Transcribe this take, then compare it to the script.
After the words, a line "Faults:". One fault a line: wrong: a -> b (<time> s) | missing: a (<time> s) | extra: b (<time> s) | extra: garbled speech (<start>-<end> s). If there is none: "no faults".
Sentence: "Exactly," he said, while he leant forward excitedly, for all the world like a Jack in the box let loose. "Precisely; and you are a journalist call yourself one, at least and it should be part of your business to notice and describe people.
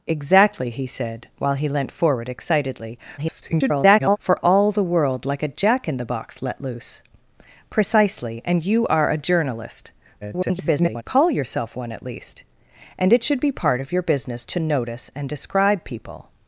"Exactly," he said, while he leant forward excitedly, [garbled] for all the world like a Jack in the box let loose. "Precisely; and you are a journalist [garbled] call yourself one, at least and it should be part of your business to notice and describe people.
Faults:
extra: garbled speech (3.2-4.2 s)
extra: garbled speech (10.2-11.0 s)